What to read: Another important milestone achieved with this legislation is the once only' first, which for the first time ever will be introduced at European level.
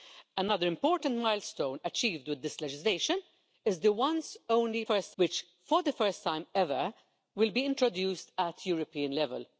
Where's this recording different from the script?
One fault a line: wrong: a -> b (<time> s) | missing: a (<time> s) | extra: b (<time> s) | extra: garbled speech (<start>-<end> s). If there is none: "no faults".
no faults